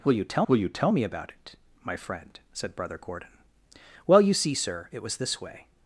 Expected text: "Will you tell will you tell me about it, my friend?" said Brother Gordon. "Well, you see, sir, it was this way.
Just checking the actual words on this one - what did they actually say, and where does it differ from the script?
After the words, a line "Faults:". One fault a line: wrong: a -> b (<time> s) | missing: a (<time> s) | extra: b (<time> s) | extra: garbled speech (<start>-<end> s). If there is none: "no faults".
"Will you tell will you tell me about it, my friend?" said Brother Gordon. "Well, you see, sir, it was this way.
Faults:
no faults